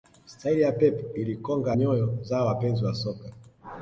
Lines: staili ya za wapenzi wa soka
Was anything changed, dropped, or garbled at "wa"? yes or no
no